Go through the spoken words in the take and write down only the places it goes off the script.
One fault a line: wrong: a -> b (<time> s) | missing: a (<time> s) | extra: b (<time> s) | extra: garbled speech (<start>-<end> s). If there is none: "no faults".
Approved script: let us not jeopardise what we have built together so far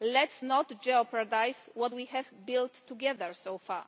no faults